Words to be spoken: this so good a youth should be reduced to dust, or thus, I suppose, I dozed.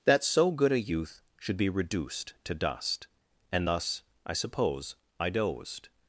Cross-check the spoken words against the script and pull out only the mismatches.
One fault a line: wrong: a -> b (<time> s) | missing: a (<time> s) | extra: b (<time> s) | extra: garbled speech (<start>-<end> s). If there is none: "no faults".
wrong: this -> that (0.1 s)
wrong: or -> and (3.5 s)